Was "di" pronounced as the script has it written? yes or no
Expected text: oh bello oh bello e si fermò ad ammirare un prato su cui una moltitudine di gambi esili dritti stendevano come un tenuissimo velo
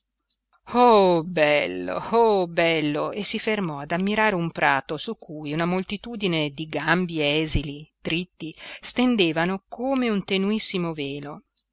yes